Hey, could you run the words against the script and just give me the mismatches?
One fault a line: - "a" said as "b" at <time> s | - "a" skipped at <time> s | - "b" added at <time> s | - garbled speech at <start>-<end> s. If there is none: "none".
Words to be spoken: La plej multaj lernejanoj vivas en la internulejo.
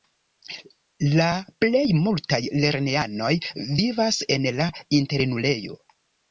none